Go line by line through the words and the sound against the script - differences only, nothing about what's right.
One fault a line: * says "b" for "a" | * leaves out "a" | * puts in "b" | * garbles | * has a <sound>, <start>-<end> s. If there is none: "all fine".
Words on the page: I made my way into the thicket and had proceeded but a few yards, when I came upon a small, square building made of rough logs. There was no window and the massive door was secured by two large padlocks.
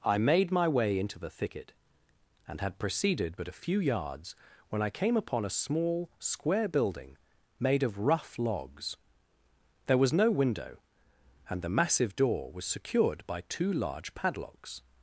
all fine